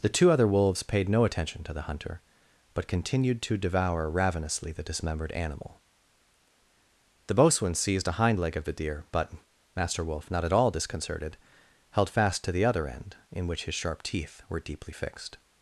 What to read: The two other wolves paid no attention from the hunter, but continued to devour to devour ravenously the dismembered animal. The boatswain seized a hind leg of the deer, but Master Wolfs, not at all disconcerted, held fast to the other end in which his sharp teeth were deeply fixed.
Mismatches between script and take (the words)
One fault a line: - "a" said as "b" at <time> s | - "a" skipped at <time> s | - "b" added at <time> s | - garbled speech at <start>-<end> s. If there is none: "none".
- "from" said as "to" at 1.6 s
- "to devour" skipped at 4.1 s
- "Wolfs" said as "Wolf" at 10.0 s